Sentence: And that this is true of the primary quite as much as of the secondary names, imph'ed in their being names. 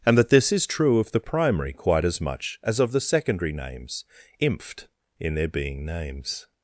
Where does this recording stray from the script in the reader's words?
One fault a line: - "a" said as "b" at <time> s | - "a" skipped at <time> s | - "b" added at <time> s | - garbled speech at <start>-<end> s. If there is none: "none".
none